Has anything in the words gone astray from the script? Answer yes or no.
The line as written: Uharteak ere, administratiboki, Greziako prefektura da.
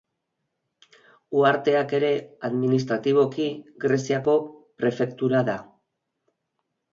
no